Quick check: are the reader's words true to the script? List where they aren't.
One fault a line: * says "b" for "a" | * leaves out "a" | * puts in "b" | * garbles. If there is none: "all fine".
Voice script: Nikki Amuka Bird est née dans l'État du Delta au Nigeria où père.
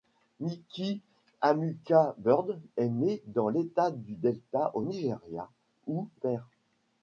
all fine